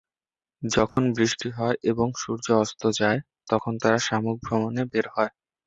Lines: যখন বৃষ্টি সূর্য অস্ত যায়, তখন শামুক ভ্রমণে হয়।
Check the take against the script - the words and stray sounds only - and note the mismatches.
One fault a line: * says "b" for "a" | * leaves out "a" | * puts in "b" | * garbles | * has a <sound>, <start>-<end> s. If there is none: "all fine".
* has a dropout, 0.9-1.0 s
* puts in "হয় এবং"
* puts in "তারা"
* puts in "বের"